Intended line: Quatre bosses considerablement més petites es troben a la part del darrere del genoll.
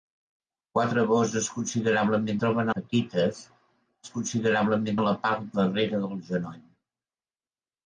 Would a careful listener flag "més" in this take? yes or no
yes